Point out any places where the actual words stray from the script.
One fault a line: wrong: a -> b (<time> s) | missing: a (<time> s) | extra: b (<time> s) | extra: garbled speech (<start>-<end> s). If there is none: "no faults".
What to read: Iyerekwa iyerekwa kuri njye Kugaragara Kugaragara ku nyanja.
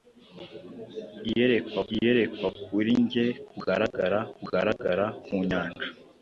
no faults